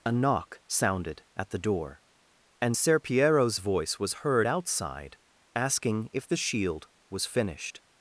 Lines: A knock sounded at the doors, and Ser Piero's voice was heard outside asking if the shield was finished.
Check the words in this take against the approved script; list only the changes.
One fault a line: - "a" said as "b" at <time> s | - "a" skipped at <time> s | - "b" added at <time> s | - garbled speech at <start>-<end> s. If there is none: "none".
- "doors" said as "door" at 1.6 s